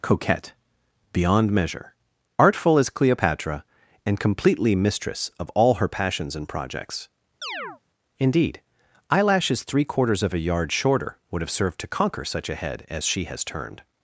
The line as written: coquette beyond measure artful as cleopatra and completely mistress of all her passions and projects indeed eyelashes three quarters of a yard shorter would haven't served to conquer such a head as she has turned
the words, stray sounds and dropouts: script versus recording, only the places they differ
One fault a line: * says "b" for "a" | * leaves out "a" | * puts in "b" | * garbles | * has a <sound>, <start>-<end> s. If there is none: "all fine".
* has a chirp, 7.4-7.8 s
* says "have" for "haven't"